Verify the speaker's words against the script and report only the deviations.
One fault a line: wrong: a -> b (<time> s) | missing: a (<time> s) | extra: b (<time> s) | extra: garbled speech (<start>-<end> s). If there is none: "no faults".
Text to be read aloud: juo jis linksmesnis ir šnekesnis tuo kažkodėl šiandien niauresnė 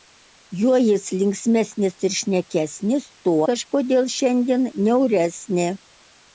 no faults